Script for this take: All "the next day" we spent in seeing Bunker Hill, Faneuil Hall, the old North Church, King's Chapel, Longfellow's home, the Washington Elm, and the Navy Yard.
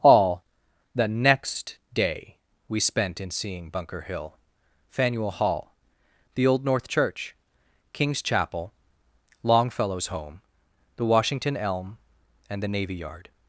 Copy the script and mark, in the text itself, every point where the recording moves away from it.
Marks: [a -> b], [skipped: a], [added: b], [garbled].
All "the next day" we spent in seeing Bunker Hill, Faneuil Hall, the old North Church, King's Chapel, Longfellow's home, the Washington Elm, and the Navy Yard.